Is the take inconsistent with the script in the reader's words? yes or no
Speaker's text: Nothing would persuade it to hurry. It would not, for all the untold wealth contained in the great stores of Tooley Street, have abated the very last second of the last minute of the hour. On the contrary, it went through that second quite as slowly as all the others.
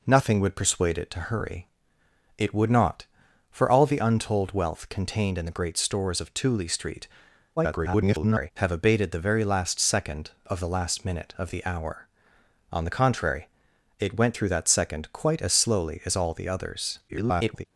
yes